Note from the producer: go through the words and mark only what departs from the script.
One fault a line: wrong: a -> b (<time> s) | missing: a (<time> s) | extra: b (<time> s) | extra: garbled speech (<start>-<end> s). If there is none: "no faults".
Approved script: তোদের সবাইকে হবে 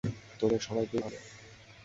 no faults